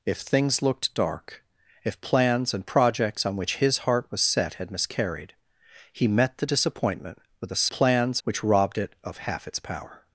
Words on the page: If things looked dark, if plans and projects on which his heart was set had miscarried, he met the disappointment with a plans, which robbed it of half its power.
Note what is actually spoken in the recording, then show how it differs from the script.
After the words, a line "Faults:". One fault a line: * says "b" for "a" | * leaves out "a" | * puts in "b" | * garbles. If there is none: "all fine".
If things looked dark, if plans and projects on which his heart was set had miscarried, he met the disappointment with a plans, which robbed it of half its power.
Faults:
all fine